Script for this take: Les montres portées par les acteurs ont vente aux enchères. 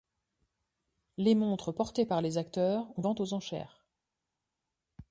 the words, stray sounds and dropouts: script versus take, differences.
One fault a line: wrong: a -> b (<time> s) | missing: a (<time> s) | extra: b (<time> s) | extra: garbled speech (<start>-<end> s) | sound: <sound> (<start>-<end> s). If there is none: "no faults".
no faults